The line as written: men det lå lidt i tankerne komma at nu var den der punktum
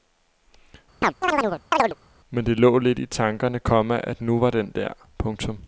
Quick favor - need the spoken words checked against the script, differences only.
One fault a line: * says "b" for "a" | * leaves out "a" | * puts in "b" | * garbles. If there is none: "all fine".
all fine